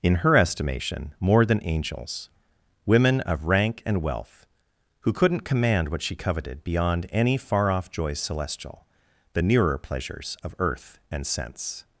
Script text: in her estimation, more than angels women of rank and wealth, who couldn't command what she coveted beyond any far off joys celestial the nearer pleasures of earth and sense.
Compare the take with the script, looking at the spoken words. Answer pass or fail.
pass